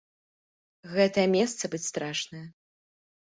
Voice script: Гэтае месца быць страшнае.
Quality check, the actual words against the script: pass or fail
pass